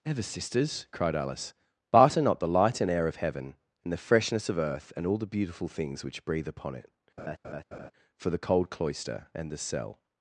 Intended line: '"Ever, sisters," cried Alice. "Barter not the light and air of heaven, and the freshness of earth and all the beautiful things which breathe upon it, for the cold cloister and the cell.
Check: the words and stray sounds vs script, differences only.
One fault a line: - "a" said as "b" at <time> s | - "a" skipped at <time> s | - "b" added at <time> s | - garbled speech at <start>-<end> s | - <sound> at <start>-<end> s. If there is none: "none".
- laugh at 7.2-7.9 s